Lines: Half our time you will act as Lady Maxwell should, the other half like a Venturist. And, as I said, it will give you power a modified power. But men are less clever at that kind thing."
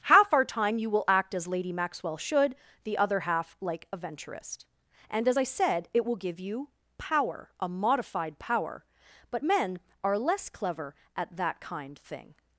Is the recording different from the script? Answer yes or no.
no